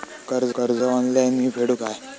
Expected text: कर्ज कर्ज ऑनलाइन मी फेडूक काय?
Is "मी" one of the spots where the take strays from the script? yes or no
no